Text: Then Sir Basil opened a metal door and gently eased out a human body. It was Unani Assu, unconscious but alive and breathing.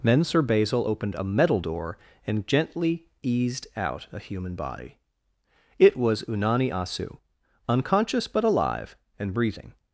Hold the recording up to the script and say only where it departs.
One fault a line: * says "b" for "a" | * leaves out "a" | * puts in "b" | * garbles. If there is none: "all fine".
all fine